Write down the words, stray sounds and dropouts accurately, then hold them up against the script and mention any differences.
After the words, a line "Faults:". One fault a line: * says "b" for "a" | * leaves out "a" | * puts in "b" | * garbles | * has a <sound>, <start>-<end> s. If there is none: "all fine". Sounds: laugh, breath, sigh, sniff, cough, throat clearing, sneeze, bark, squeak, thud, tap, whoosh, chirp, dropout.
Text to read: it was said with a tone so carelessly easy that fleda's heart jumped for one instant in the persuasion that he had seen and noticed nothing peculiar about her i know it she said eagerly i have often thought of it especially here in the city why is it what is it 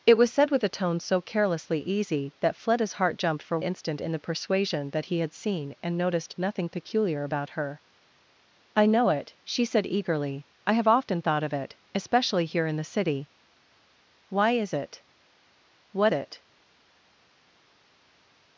it was said with a tone so carelessly easy that fleda's heart jumped for instant in the persuasion that he had seen and noticed nothing peculiar about her i know it she said eagerly i have often thought of it especially here in the city why is it what it
Faults:
* leaves out "one"
* leaves out "is"